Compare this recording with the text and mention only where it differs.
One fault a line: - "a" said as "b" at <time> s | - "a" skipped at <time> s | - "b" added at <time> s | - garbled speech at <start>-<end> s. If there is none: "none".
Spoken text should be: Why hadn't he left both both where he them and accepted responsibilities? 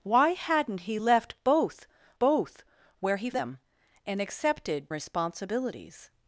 none